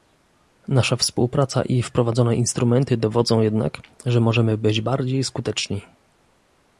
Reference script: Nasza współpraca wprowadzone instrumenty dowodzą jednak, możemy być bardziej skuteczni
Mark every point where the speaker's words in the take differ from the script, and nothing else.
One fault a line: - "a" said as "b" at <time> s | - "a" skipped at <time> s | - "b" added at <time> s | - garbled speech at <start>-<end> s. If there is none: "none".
- "i" added at 1.6 s
- "że" added at 4.0 s